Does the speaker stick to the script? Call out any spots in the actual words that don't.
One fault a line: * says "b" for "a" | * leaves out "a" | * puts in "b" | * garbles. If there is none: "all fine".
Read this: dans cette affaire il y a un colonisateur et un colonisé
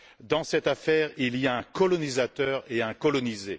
all fine